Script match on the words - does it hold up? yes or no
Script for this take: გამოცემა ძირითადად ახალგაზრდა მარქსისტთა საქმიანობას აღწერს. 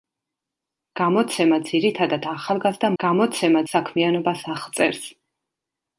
no